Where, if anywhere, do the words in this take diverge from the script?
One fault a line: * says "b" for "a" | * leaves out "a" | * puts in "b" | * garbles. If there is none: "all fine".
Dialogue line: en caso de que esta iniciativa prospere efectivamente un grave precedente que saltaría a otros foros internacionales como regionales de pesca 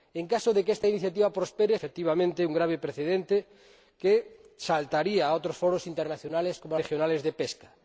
all fine